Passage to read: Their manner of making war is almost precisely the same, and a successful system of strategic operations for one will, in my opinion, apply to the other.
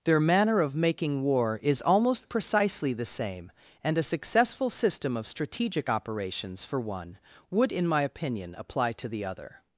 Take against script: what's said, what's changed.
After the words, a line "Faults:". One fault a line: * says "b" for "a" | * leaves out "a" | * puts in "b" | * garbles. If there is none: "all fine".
Their manner of making war is almost precisely the same, and a successful system of strategic operations for one would, in my opinion, apply to the other.
Faults:
* says "would" for "will"